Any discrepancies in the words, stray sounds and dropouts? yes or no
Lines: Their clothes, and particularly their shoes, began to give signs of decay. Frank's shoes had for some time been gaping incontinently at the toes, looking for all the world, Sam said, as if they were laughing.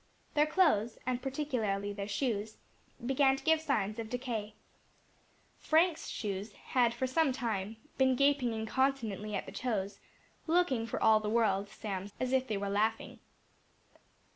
yes